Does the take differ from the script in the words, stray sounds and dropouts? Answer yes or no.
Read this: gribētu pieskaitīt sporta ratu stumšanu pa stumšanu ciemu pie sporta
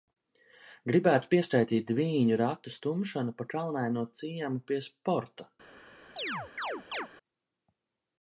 yes